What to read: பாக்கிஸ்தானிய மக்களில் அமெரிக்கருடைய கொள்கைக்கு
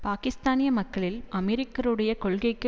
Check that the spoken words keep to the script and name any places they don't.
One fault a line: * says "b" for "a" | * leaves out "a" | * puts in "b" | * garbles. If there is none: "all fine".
all fine